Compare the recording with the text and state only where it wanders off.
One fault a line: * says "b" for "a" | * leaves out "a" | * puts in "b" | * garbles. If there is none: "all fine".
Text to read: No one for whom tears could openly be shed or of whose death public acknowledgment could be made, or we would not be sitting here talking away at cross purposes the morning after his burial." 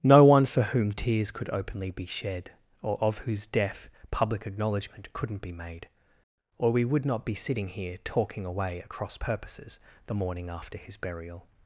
* says "couldn't" for "could"